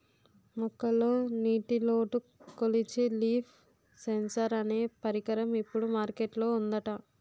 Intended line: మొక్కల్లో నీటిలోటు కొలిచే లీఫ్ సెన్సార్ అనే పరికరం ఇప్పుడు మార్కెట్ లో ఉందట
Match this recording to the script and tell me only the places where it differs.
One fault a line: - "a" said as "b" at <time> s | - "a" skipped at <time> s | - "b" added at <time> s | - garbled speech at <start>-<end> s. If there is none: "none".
none